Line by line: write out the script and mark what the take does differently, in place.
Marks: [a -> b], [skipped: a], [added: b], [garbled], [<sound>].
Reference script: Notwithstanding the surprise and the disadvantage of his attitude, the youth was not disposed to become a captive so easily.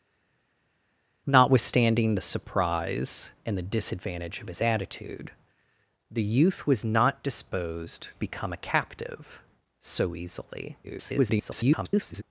Notwithstanding the surprise and the disadvantage of his attitude, the youth was not disposed [skipped: to] become a captive so easily. [garbled]